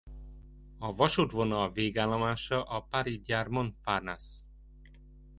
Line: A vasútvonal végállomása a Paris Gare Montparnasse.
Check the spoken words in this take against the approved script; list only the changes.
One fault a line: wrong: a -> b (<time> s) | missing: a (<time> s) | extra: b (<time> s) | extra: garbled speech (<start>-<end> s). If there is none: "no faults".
no faults